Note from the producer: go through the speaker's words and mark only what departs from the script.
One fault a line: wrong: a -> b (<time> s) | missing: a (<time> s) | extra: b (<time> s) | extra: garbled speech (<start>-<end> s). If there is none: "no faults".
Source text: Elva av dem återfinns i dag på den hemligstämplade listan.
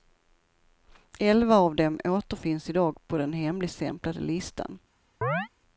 no faults